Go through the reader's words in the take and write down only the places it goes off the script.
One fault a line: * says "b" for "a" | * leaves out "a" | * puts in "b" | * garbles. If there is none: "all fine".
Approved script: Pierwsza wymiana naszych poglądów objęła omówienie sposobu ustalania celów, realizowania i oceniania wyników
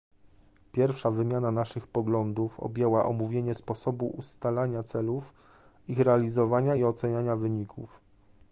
* puts in "ich"